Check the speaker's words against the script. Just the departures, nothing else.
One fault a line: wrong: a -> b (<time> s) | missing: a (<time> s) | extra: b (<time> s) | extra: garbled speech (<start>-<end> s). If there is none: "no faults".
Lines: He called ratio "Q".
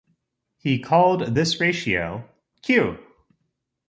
extra: this (1.3 s)